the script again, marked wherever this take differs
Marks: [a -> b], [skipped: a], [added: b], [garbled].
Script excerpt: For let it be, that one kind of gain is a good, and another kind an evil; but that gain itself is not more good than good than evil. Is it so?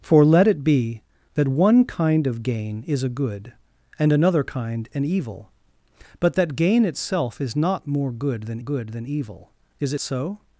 For let it be, that one kind of gain is a good, and another kind an evil; but that gain itself is not more good than good than evil. Is it so?